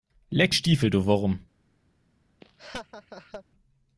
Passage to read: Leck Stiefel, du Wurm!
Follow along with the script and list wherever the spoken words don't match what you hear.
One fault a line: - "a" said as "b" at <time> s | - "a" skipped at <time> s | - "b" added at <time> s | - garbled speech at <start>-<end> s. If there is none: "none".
none